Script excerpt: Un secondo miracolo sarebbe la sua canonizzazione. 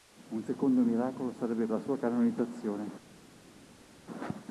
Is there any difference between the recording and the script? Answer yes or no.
no